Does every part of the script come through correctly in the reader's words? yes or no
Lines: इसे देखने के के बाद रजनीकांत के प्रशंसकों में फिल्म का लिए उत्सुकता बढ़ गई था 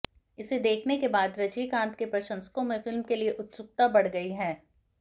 no